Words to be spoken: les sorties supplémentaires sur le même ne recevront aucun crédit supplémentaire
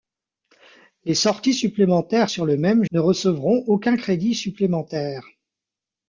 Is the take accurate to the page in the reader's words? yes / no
yes